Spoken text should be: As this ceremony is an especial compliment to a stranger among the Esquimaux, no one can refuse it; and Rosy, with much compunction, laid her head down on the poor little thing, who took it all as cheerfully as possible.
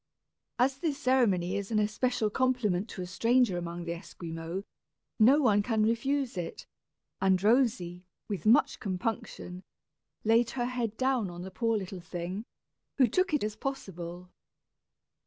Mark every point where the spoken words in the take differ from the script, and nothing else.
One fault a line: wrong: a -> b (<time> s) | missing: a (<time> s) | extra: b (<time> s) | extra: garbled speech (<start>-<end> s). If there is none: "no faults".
missing: all as cheerfully (13.4 s)